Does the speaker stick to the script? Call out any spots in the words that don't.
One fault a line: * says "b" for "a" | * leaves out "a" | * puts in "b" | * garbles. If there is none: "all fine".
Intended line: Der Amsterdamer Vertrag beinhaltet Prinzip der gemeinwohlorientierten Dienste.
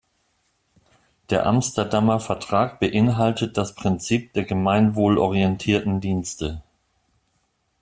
* puts in "das"